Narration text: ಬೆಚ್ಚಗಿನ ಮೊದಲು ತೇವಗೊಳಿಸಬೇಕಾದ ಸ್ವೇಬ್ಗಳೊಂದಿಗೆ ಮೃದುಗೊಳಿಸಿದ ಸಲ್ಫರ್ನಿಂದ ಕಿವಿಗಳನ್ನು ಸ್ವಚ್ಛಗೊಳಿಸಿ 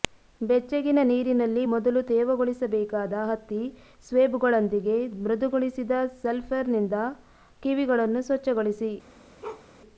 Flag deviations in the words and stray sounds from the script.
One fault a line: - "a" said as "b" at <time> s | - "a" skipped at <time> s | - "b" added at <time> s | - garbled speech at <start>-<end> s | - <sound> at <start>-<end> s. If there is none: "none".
- "ನೀರಿನಲ್ಲಿ" added at 1.0 s
- "ಹತ್ತಿ" added at 3.3 s
- bark at 9.4-9.7 s